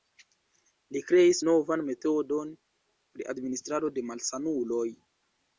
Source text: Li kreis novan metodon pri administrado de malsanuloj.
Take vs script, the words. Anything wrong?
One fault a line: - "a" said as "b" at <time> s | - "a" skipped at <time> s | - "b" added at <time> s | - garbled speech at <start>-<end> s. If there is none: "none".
none